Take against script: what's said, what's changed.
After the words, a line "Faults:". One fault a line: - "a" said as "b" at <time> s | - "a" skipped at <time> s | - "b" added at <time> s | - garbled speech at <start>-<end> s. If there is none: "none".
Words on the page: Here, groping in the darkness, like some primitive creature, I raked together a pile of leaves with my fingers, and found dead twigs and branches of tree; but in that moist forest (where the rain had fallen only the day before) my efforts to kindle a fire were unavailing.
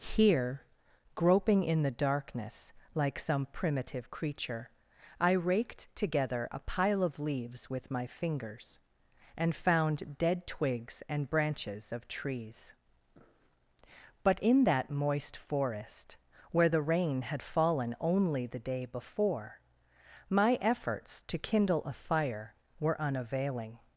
Here, groping in the darkness, like some primitive creature, I raked together a pile of leaves with my fingers, and found dead twigs and branches of trees; but in that moist forest (where the rain had fallen only the day before) my efforts to kindle a fire were unavailing.
Faults:
- "tree" said as "trees" at 12.1 s